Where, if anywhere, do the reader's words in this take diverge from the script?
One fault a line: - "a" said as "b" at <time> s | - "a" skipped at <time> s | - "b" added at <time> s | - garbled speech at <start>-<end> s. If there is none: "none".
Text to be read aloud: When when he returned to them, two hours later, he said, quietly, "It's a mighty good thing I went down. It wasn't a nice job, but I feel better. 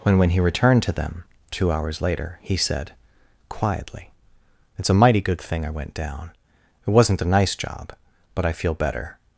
none